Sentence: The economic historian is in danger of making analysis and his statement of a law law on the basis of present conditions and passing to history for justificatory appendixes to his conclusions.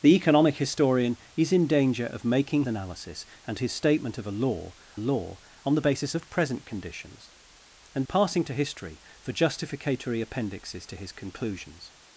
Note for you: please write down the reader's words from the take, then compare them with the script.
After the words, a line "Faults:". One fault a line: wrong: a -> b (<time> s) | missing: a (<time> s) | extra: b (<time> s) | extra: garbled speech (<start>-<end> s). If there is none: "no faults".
The economic historian is in danger of making analysis and his statement of a law law on the basis of present conditions and passing to history for justificatory appendixes to his conclusions.
Faults:
no faults